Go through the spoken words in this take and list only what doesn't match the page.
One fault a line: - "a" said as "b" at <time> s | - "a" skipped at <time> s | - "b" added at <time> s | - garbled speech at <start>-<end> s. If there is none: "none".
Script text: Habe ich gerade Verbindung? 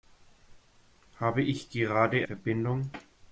none